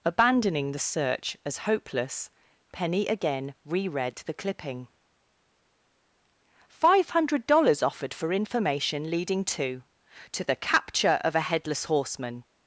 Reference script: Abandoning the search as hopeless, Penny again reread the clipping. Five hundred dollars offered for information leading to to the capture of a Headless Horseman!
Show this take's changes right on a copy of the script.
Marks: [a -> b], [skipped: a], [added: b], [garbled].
Abandoning the search as hopeless, Penny again reread the clipping. Five hundred dollars offered for information leading to to the capture of a Headless Horseman!